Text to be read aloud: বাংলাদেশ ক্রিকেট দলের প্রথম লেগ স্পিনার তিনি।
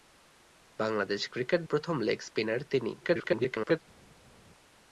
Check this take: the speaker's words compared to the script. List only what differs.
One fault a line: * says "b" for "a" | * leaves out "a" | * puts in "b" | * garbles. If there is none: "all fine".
* leaves out "দলের"
* garbles